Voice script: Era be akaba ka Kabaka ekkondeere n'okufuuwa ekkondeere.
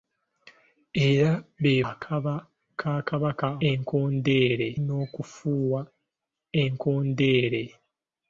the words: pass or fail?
pass